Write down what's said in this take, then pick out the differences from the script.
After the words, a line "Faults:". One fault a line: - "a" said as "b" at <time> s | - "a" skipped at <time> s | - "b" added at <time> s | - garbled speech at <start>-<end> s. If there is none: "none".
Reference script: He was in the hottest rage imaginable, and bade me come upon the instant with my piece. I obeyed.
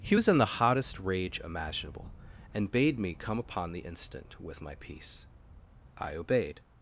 He was in the hottest rage imaginable, and bade me come upon the instant with my piece. I obeyed.
Faults:
none